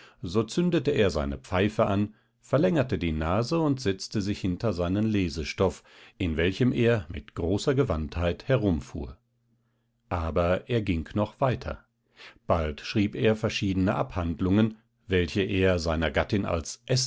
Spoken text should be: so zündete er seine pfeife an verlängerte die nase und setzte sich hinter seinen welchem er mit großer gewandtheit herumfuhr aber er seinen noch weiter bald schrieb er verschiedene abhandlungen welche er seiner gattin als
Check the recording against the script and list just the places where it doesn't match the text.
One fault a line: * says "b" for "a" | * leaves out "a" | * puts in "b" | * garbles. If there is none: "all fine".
* puts in "lesestoff in"
* says "ging" for "seinen"